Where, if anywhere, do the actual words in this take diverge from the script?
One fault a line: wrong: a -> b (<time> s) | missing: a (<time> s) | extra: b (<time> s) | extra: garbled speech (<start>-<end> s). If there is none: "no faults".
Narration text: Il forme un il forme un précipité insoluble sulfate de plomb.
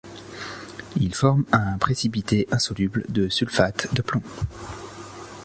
missing: il forme un (1.8 s)
extra: de (3.1 s)